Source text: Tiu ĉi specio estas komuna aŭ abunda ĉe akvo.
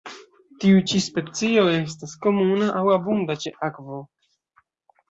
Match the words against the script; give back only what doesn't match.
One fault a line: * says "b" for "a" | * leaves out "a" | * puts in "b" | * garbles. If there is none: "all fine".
all fine